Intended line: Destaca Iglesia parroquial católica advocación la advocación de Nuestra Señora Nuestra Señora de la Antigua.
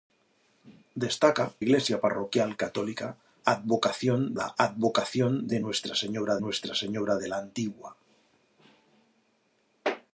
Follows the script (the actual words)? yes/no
yes